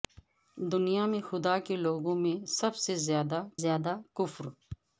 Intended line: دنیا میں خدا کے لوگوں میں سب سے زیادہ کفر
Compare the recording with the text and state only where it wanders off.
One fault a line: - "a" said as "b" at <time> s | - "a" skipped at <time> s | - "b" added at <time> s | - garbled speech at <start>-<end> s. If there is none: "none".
- "زیادہ" added at 3.6 s